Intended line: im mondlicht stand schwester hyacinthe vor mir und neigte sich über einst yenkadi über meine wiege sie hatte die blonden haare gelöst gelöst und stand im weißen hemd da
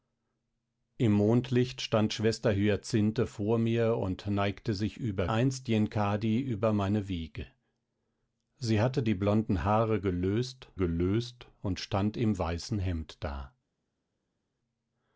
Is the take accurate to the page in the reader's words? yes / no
yes